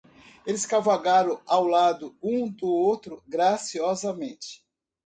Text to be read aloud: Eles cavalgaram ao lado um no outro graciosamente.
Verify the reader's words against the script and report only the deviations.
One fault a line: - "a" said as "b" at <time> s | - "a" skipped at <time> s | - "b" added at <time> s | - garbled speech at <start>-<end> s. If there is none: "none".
- "no" said as "do" at 2.5 s